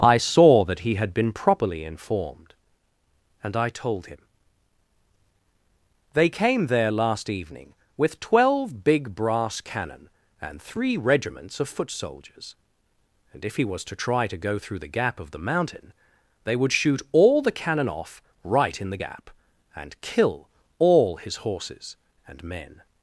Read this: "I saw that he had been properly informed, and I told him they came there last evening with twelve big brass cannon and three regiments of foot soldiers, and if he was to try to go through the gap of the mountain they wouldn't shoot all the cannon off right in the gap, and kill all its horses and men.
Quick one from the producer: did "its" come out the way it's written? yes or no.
no